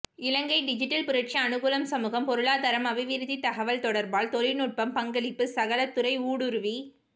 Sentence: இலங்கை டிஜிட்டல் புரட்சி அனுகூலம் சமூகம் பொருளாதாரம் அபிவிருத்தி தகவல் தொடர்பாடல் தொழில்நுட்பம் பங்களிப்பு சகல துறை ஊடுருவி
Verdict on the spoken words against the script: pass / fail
pass